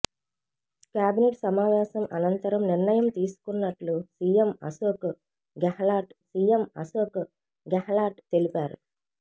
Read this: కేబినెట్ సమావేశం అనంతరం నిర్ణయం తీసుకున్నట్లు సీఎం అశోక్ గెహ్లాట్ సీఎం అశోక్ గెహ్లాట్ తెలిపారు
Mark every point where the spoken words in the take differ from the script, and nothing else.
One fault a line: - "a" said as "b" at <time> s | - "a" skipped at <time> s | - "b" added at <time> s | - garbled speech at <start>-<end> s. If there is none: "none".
none